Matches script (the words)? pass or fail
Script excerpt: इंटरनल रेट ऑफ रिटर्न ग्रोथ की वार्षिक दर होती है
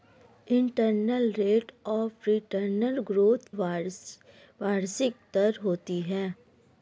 fail